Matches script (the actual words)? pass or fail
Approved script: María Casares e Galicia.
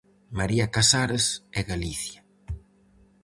pass